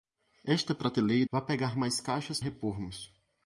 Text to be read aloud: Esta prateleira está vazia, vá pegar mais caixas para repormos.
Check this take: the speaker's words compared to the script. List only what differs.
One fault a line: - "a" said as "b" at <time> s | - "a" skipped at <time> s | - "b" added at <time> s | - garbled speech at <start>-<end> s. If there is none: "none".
- "está vazia" skipped at 1.3 s
- "para" skipped at 2.4 s